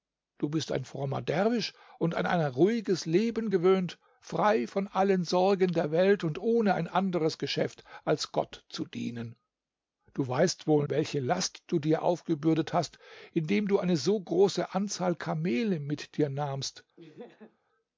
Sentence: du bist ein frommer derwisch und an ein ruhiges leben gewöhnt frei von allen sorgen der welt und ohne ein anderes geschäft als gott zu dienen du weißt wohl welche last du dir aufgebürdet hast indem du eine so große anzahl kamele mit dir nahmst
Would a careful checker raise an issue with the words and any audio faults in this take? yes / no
yes